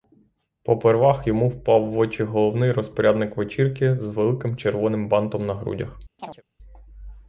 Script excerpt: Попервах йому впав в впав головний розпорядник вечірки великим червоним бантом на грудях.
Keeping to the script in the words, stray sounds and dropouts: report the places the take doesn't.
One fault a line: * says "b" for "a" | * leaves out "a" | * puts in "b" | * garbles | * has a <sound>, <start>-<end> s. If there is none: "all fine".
* says "очі" for "впав"
* puts in "з"
* has a chirp, 6.2-6.4 s